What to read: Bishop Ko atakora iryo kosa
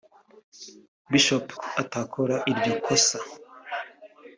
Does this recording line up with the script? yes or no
yes